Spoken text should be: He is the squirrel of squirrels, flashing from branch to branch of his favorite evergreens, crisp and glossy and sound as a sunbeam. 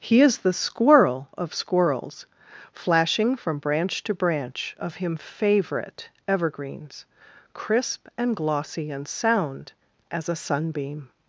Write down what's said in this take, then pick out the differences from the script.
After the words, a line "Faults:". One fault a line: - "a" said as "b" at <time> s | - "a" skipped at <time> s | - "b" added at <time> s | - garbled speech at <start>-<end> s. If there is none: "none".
He is the squirrel of squirrels, flashing from branch to branch of him favorite evergreens, crisp and glossy and sound as a sunbeam.
Faults:
- "his" said as "him" at 5.0 s